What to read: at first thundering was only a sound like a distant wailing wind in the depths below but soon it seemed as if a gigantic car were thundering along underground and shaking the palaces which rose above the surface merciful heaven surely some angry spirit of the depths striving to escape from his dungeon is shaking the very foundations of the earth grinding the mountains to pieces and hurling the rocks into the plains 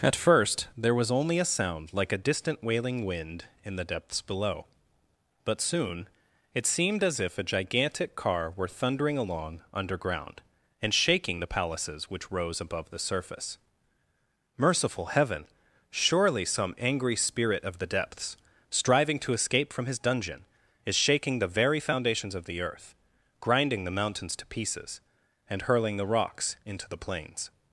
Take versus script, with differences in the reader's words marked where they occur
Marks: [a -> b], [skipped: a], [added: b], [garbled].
at first [thundering -> there] was only a sound like a distant wailing wind in the depths below but soon it seemed as if a gigantic car were thundering along underground and shaking the palaces which rose above the surface merciful heaven surely some angry spirit of the depths striving to escape from his dungeon is shaking the very foundations of the earth grinding the mountains to pieces and hurling the rocks into the plains